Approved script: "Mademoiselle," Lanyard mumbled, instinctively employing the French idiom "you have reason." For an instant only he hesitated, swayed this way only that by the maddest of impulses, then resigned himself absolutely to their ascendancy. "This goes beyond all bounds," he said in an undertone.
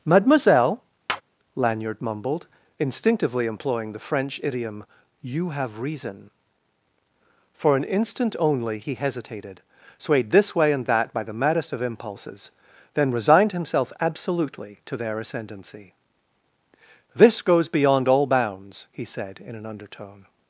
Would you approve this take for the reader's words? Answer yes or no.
no